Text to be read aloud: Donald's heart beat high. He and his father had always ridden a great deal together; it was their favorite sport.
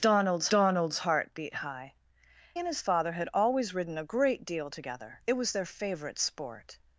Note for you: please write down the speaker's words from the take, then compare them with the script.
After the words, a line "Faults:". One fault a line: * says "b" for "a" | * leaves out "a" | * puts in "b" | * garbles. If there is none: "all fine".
Donald's donald's heart beat high. And his father had always ridden a great deal together; it was their favorite sport.
Faults:
* puts in "donald's"
* leaves out "He"